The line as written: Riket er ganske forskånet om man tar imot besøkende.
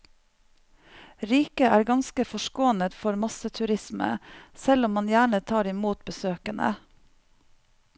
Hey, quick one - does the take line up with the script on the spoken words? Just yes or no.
no